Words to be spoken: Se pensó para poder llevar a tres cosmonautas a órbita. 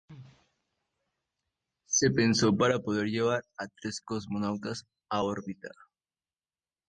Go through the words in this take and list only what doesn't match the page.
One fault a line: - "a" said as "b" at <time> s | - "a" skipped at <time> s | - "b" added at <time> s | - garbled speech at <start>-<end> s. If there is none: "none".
none